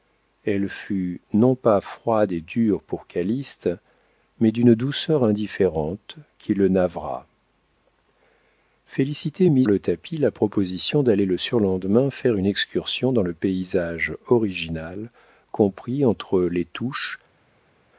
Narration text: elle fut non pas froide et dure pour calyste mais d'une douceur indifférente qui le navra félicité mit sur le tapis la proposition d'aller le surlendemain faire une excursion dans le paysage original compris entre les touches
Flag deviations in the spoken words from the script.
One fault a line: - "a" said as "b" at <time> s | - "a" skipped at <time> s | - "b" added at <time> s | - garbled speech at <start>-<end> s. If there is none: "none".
- "sur" skipped at 9.7 s